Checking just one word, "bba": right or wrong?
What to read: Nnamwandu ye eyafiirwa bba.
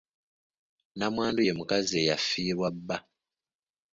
right